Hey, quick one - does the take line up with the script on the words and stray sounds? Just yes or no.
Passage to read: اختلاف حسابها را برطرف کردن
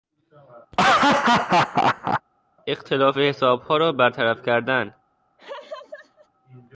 no